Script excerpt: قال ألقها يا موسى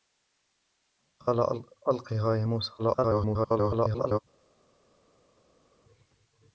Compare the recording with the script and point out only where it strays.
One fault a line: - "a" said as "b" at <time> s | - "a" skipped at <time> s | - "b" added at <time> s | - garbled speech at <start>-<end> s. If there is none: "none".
- garbled speech at 2.8-4.2 s